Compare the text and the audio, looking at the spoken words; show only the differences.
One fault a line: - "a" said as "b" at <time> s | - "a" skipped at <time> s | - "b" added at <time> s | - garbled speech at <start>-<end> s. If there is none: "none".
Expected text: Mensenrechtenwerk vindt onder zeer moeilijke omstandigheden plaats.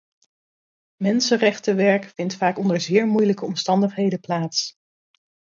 - "vaak" added at 2.4 s